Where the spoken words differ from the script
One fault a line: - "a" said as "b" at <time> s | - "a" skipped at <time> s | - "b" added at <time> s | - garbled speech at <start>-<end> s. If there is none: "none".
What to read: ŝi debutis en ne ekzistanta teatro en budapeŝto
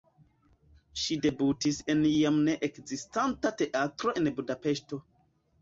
- "jam" added at 2.1 s